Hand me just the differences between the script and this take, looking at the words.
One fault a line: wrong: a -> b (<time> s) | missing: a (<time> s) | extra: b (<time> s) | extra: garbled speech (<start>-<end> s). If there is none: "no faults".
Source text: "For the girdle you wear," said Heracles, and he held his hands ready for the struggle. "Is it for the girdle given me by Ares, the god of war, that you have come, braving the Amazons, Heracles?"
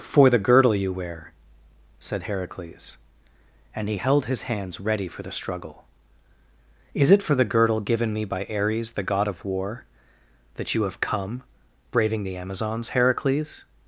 no faults